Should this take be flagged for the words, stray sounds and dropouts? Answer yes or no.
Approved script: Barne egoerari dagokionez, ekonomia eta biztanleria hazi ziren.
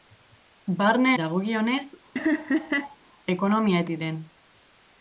yes